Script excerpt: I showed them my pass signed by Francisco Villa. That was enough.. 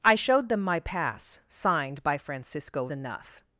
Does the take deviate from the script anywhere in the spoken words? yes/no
yes